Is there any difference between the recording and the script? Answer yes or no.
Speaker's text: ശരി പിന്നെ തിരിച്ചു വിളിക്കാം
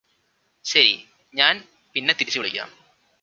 yes